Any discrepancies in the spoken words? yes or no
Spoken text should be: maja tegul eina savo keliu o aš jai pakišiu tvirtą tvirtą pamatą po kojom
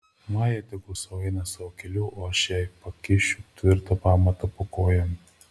yes